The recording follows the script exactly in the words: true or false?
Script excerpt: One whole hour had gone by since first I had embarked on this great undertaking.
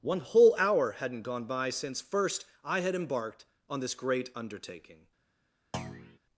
false